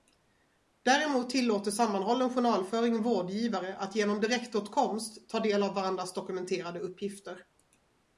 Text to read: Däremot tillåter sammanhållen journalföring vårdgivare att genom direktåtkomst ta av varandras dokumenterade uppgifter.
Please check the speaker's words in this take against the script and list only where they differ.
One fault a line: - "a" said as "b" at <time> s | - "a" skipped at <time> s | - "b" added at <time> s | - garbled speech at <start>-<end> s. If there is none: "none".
- "del" added at 5.4 s